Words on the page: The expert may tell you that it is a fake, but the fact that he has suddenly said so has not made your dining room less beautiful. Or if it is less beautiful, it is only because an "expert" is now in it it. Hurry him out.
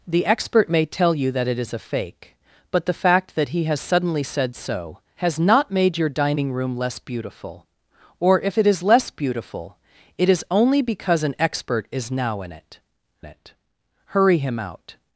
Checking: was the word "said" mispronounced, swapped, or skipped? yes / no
no